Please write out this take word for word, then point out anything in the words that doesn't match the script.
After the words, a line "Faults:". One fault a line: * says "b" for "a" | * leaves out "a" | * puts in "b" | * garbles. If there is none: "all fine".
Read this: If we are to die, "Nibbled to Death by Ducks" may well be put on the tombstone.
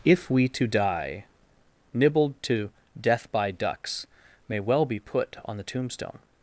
If we to die, "Nibbled to Death by Ducks" may well be put on the tombstone.
Faults:
* leaves out "are"